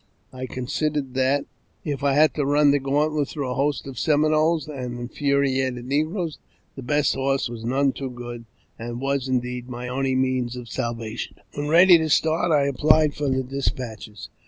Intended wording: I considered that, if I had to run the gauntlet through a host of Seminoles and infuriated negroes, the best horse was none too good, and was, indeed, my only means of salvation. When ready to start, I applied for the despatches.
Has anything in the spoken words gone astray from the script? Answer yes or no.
no